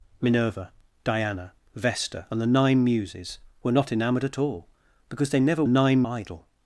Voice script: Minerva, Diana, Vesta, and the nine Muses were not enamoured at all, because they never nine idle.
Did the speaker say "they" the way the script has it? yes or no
yes